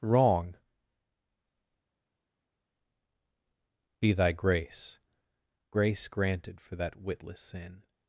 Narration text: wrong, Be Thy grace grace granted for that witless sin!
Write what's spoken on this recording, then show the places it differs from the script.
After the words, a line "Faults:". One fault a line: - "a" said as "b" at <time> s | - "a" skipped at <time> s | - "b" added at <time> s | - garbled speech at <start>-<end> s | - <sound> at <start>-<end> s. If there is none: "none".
wrong, Be Thy grace grace granted for that witless sin!
Faults:
none